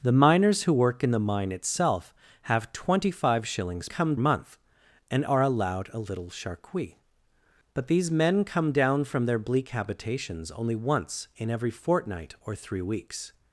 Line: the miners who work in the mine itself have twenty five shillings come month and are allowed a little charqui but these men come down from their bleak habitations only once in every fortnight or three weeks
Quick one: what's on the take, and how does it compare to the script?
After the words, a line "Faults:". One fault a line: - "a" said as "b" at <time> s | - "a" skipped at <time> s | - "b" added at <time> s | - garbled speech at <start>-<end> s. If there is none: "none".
the miners who work in the mine itself have twenty five shillings come month and are allowed a little charqui but these men come down from their bleak habitations only once in every fortnight or three weeks
Faults:
none